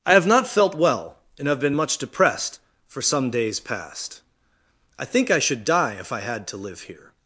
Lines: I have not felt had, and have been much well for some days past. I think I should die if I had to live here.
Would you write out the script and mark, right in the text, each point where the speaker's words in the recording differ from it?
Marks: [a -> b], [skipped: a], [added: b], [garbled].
I have not felt [had, -> well] and have been much [well -> depressed] for some days past. I think I should die if I had to live here.